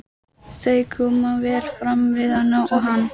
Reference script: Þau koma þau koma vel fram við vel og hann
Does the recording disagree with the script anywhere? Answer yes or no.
yes